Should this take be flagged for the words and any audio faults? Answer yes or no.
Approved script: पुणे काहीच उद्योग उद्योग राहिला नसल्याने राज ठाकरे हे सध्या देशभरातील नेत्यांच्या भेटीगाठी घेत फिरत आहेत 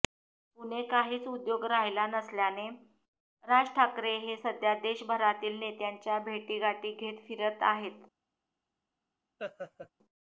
yes